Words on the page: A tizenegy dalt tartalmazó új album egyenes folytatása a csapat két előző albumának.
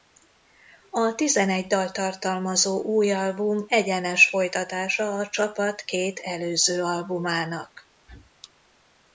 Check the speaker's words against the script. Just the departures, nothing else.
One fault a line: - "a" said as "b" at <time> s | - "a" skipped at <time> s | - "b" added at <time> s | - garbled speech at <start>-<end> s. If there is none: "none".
none